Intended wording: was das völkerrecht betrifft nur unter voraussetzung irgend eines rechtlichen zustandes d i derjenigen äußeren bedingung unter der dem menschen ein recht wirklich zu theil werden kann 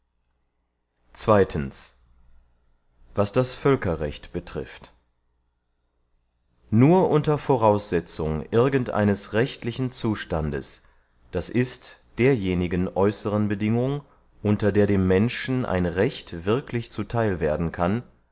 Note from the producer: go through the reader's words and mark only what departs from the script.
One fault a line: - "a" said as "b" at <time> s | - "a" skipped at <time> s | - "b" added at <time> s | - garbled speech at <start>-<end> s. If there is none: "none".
none